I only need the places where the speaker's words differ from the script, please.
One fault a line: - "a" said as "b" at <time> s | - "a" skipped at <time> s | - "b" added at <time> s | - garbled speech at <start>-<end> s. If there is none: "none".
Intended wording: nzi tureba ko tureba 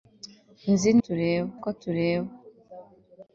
none